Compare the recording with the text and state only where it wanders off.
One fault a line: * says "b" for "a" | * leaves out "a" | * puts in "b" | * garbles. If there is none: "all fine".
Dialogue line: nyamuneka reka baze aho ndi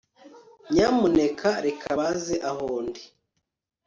all fine